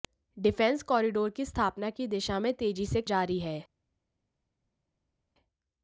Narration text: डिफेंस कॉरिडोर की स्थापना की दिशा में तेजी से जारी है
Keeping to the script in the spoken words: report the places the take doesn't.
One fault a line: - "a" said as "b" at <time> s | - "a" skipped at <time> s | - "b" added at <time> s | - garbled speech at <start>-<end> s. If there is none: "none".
none